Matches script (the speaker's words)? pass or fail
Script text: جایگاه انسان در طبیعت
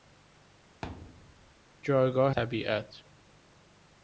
fail